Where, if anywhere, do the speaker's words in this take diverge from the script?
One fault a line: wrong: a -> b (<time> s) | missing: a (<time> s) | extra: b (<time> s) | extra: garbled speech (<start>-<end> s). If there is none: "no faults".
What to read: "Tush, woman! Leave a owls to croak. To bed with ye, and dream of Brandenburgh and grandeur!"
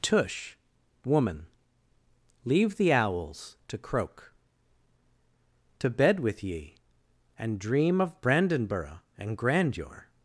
wrong: a -> the (2.8 s)